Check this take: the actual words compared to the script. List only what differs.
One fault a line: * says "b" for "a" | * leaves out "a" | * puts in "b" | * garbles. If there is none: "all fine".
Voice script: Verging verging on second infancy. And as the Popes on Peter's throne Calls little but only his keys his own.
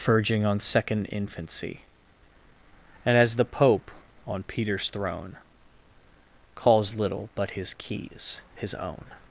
* leaves out "verging"
* says "Pope" for "Popes"
* leaves out "only"